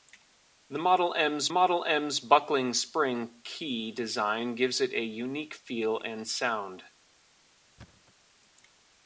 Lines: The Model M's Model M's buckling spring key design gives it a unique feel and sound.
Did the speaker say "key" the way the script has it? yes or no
yes